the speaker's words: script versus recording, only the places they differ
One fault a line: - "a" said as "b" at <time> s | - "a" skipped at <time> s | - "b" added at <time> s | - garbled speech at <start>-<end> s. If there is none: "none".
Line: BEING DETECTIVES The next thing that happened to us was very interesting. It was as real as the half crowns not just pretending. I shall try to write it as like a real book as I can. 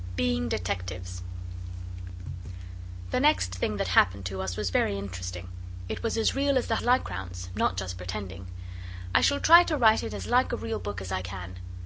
- "half" said as "like" at 6.8 s